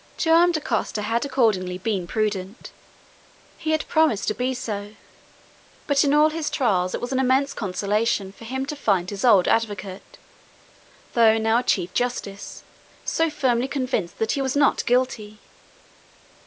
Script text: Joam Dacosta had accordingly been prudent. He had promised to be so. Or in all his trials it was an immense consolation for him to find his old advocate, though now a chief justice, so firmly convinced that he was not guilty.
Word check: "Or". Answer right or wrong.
wrong